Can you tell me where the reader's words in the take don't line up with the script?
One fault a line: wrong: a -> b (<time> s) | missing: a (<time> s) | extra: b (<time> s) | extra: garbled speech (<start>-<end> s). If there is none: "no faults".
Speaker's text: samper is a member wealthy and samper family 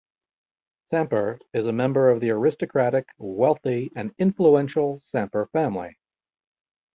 extra: of the aristocratic (2.1 s)
extra: influential (4.2 s)